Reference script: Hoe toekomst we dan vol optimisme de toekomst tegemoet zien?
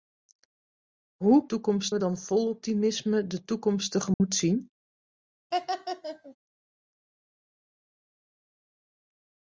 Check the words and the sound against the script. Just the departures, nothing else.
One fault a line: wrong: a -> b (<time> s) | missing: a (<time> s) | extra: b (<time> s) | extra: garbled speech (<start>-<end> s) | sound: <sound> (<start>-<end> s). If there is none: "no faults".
sound: dropout (4.1-4.2 s)
sound: laugh (5.5-6.4 s)